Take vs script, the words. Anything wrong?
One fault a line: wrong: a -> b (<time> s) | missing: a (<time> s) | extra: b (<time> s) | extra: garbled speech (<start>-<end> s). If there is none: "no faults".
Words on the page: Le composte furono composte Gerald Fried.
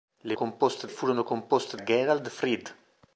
no faults